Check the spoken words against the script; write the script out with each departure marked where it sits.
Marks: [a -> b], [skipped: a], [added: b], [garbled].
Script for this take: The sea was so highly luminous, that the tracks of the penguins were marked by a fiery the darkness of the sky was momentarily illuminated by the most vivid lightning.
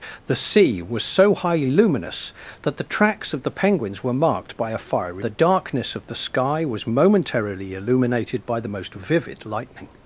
The sea was so highly luminous, that the tracks of the penguins were marked by a fiery the darkness of the sky was momentarily illuminated by the most vivid lightning.